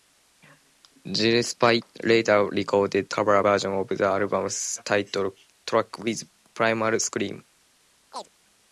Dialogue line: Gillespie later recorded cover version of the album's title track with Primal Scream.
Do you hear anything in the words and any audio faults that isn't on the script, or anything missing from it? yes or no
yes